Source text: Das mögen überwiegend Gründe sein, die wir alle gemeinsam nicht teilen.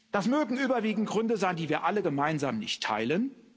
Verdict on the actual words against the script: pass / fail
pass